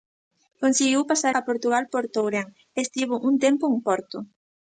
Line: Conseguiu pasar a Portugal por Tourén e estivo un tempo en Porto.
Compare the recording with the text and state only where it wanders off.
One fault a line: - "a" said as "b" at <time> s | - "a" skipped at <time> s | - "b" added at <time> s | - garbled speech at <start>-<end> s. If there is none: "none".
none